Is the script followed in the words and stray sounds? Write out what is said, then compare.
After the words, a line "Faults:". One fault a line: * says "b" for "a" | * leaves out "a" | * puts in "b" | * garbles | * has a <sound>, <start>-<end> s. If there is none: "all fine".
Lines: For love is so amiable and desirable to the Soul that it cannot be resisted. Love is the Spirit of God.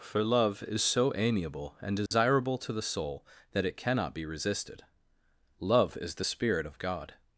For love is so amiable and desirable to the Soul that it cannot be resisted. Love is the Spirit of God.
Faults:
* has a dropout, 2.1-2.1 s